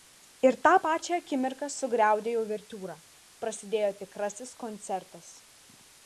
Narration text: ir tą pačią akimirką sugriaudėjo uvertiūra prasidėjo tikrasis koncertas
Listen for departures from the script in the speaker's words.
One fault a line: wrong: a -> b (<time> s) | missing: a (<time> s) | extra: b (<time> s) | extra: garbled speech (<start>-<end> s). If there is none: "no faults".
no faults